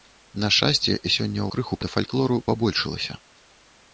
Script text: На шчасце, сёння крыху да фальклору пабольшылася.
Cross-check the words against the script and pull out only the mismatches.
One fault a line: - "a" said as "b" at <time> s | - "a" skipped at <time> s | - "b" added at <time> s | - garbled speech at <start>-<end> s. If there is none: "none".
none